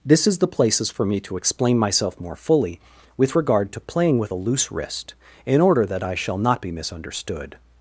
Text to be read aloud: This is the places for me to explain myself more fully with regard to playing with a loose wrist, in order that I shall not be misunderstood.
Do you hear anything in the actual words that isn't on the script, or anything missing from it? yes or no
no